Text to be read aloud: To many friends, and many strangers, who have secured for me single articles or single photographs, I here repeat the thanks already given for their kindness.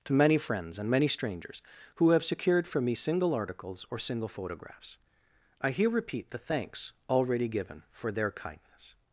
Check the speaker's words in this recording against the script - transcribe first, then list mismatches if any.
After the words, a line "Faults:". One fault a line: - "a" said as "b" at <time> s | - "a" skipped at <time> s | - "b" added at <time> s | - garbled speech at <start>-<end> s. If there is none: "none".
To many friends, and many strangers, who have secured for me single articles or single photographs, I here repeat the thanks already given for their kindness.
Faults:
none